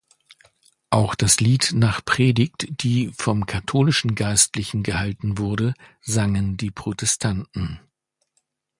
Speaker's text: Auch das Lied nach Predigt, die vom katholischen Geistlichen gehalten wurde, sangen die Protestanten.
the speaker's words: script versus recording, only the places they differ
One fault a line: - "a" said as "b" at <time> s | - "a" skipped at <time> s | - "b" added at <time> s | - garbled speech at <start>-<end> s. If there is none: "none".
none